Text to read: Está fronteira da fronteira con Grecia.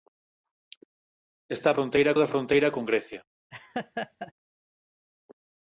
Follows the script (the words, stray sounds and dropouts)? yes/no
no